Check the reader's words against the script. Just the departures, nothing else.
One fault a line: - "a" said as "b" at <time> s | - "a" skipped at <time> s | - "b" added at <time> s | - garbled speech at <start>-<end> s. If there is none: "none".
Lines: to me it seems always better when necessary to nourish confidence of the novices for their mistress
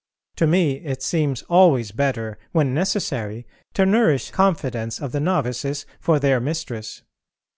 none